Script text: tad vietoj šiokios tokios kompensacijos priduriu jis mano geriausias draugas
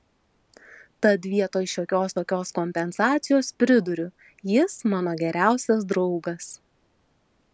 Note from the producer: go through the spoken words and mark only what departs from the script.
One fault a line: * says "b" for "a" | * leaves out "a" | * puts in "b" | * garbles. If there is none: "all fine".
all fine